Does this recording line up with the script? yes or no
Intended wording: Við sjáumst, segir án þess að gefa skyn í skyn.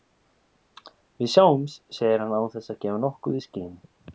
no